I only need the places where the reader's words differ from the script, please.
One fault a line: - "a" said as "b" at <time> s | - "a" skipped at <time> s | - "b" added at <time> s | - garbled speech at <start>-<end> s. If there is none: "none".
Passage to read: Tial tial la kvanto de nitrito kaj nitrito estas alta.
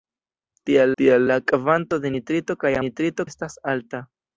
none